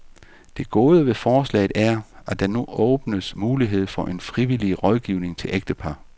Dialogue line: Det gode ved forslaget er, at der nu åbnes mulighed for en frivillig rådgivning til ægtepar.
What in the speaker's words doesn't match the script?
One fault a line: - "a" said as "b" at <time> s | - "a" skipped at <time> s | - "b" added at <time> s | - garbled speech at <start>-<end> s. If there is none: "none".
none